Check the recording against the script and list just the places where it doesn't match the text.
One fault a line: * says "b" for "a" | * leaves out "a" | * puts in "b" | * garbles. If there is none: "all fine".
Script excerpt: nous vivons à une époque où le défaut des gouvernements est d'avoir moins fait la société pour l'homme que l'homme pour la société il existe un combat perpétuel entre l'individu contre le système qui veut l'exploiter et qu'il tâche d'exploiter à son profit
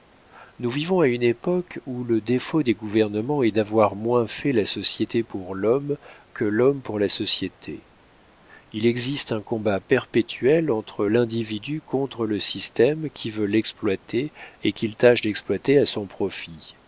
all fine